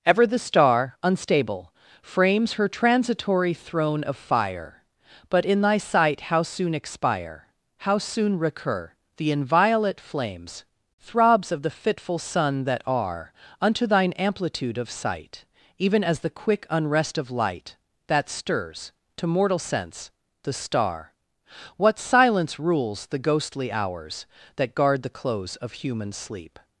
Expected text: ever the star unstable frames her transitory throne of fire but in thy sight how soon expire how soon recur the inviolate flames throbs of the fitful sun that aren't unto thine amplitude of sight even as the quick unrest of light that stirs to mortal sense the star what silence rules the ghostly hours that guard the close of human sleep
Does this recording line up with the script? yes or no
no